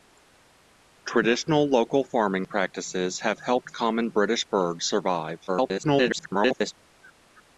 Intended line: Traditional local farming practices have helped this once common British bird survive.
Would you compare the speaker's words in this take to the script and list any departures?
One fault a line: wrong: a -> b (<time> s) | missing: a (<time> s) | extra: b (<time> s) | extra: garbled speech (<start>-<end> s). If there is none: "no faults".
missing: this once (3.7 s)
extra: garbled speech (5.5-6.7 s)